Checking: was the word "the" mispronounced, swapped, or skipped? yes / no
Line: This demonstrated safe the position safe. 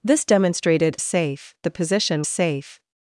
no